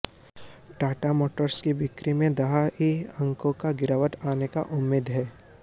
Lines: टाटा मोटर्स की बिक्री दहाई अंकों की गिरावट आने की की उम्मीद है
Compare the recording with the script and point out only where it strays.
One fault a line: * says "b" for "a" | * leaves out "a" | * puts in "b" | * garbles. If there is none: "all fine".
* puts in "में"
* leaves out "की"